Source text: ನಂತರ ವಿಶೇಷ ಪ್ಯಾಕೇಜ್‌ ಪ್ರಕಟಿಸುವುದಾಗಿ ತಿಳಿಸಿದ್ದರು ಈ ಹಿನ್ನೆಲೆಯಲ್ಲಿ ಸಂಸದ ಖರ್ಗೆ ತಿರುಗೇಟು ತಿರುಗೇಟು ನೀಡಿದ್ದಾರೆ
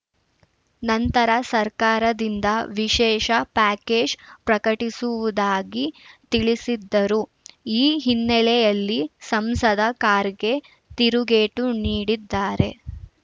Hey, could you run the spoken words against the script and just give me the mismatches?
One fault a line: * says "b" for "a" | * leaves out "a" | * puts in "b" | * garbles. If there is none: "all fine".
* puts in "ಸರ್ಕಾರದಿಂದ"
* leaves out "ತಿರುಗೇಟು"